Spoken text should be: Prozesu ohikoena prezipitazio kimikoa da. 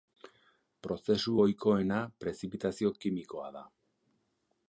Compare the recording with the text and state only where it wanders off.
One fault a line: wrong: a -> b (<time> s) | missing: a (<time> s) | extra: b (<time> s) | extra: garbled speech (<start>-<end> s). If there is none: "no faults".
no faults